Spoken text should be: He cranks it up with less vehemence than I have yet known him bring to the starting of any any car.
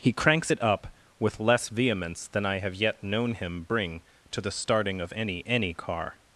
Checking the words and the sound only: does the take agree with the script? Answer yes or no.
yes